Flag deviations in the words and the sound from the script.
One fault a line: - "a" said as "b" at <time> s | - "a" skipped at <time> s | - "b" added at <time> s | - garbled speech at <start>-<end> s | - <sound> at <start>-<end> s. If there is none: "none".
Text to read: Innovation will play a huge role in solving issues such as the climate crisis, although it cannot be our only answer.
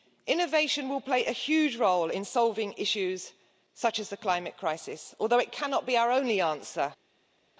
none